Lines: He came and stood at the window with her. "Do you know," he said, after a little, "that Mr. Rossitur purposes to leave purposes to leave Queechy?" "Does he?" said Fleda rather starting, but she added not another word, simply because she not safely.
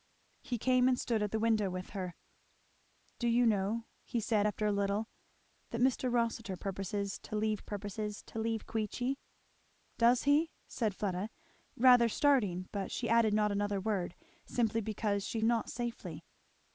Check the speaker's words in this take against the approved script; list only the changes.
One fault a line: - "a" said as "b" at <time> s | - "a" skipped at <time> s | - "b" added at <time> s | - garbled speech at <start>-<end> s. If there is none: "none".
none